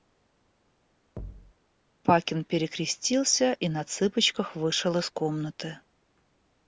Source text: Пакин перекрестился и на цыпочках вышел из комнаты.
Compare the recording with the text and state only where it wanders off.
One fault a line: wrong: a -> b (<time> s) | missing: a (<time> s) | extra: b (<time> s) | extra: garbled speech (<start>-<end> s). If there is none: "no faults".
no faults